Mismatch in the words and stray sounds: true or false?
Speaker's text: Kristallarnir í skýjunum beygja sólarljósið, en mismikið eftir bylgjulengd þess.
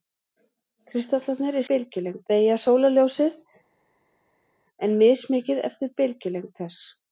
true